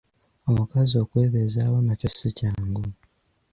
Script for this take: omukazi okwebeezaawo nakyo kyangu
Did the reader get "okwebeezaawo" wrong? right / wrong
right